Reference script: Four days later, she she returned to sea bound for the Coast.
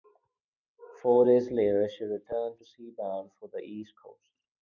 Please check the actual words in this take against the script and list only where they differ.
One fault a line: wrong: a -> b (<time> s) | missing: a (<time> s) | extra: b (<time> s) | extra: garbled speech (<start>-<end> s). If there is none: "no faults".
missing: she (2.0 s)
extra: East (3.6 s)